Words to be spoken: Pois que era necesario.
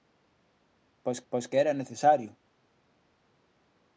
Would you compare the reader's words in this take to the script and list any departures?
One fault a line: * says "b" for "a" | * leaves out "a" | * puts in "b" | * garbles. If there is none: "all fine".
* puts in "pois"